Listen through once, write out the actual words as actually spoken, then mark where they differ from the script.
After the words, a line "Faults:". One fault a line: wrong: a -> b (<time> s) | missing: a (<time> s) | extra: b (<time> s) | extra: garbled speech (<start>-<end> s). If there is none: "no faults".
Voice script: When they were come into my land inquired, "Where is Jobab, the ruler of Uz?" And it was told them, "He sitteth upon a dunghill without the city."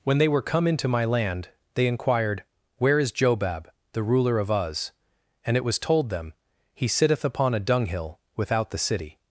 When they were come into my land they inquired, "Where is Jobab, the ruler of Uz?" And it was told them, "He sitteth upon a dunghill without the city."
Faults:
extra: they (1.8 s)